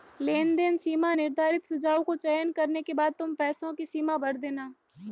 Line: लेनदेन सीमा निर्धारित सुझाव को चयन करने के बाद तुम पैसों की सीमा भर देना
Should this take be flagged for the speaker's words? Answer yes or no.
no